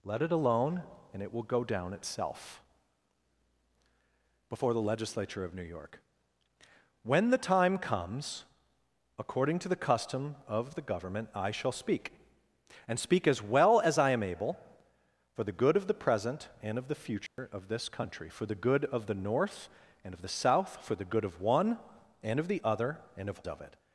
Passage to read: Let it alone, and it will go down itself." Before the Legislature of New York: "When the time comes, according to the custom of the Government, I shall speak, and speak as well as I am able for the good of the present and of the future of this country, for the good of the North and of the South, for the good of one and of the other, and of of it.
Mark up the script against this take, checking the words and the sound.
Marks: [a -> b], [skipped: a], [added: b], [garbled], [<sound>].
Let it alone, and it will go down itself." Before the Legislature of New York: "When the time comes, according to the custom of the Government, I shall speak, and speak as well as I am able for the good of the present and of the future [dropout] of this country, for the good of the North and of the South, for the good of one and of the other, and of of it.